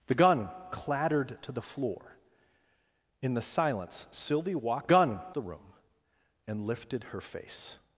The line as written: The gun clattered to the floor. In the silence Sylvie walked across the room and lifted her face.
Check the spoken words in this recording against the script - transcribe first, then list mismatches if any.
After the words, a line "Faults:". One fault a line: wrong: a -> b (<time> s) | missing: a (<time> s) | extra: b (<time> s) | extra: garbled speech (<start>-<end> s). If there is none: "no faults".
The gun clattered to the floor. In the silence Sylvie walked gun the room and lifted her face.
Faults:
wrong: across -> gun (4.9 s)